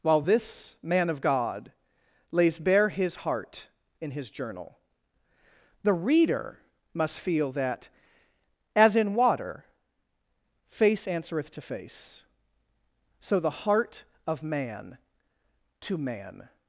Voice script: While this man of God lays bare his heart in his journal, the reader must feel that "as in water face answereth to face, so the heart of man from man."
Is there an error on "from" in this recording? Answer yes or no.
yes